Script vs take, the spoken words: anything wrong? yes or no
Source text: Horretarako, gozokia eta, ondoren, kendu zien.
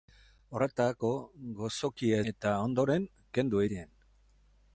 no